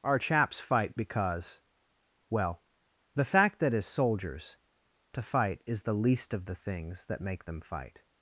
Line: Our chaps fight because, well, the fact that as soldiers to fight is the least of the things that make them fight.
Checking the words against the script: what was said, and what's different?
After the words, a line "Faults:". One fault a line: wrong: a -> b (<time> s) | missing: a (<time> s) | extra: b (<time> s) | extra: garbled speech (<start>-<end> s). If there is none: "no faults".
Our chaps fight because, well, the fact that as soldiers to fight is the least of the things that make them fight.
Faults:
no faults